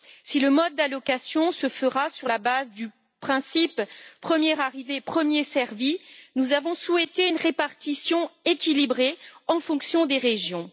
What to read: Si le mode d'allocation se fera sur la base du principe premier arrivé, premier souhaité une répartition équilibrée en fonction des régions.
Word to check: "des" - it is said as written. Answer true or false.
true